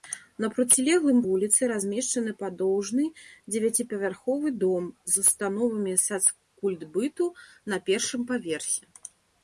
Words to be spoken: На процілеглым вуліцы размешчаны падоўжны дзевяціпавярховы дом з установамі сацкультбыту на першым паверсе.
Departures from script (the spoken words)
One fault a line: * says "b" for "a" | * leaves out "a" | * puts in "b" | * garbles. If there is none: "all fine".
all fine